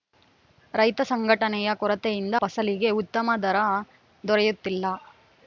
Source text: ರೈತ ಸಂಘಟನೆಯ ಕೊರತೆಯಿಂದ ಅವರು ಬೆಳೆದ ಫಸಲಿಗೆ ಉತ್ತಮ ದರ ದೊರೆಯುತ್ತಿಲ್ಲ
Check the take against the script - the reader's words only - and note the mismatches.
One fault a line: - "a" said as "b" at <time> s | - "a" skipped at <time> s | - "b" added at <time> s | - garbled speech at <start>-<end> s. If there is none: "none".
- "ಅವರು ಬೆಳೆದ" skipped at 2.4 s